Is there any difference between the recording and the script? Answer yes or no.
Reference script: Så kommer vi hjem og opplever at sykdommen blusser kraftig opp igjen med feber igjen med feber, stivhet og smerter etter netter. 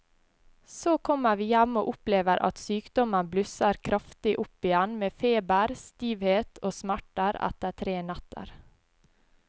yes